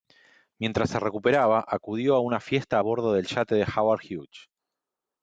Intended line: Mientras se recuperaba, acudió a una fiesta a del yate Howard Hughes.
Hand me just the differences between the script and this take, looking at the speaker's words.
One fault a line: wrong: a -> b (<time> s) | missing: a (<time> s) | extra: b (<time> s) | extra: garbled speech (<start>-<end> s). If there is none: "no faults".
extra: bordo (2.8 s)
extra: de (3.5 s)